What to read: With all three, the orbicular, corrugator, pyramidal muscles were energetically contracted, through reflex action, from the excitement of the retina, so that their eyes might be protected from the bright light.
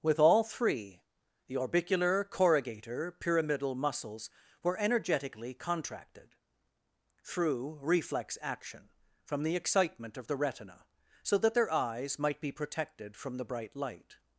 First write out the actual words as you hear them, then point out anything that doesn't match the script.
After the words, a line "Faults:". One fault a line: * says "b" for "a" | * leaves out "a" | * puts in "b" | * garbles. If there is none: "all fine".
With all three, the orbicular, corrugator, pyramidal muscles were energetically contracted, through reflex action, from the excitement of the retina, so that their eyes might be protected from the bright light.
Faults:
all fine